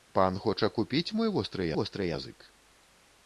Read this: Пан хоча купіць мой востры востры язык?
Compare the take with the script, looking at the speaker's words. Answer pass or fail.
pass